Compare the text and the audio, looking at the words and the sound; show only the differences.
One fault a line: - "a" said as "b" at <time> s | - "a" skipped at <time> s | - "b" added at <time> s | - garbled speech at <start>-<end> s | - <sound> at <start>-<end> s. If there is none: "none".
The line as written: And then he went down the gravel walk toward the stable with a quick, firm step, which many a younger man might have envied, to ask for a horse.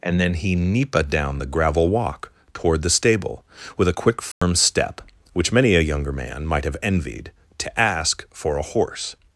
- "went" said as "nipa" at 0.6 s
- dropout at 4.3-4.4 s